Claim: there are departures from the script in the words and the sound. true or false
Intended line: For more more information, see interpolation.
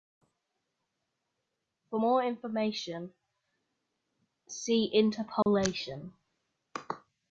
true